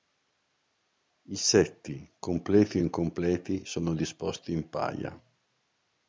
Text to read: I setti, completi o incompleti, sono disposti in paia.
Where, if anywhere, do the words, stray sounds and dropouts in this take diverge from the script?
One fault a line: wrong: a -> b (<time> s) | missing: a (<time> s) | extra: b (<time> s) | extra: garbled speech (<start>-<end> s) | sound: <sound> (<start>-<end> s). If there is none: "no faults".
no faults